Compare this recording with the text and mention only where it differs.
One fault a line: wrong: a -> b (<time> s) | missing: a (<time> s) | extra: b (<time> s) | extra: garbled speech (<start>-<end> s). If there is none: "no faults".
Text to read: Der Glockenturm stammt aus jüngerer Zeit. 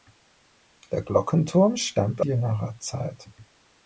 missing: aus (2.2 s)